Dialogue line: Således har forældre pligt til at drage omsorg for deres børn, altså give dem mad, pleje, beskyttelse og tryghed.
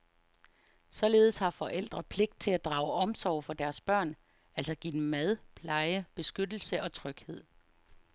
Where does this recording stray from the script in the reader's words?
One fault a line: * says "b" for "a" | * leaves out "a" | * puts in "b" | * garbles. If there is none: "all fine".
all fine